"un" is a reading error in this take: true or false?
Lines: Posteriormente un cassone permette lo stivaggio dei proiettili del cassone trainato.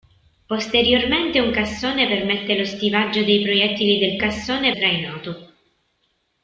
false